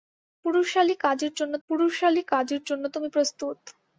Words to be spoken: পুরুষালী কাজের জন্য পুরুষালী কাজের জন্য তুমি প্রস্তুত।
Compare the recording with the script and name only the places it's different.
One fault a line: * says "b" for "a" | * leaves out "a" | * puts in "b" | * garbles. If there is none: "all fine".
all fine